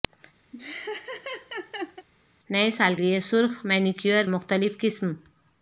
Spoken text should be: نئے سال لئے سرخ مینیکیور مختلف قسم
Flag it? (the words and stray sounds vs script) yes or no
yes